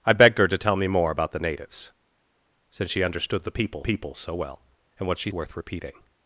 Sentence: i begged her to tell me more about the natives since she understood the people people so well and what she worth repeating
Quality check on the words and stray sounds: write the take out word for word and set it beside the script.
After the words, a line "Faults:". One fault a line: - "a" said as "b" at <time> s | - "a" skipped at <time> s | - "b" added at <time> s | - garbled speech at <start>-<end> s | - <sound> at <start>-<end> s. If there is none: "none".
i begged her to tell me more about the natives since she understood the people people so well and what she worth repeating
Faults:
none